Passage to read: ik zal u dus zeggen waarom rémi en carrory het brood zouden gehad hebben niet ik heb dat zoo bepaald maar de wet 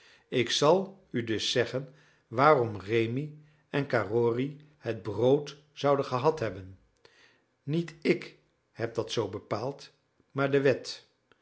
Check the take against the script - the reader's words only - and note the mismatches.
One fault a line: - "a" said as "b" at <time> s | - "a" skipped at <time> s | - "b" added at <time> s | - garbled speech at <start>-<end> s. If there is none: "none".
none